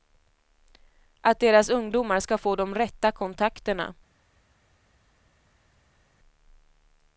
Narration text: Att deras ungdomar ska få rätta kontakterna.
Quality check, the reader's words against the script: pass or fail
fail